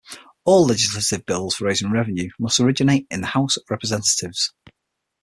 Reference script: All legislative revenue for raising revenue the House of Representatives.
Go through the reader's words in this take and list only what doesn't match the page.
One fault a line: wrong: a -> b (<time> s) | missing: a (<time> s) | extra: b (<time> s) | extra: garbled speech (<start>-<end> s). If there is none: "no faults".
wrong: revenue -> bills (1.3 s)
extra: must originate in (2.4 s)